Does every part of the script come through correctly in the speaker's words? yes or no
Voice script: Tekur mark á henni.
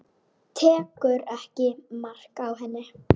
no